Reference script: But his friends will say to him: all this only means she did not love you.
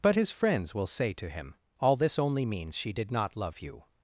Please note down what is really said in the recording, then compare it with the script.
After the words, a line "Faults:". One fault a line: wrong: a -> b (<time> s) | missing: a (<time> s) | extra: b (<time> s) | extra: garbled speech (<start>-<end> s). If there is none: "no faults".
But his friends will say to him: all this only means she did not love you.
Faults:
no faults